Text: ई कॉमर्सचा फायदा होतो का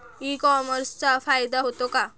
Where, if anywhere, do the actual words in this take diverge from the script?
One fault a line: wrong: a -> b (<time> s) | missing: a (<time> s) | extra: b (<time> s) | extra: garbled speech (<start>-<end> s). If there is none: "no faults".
no faults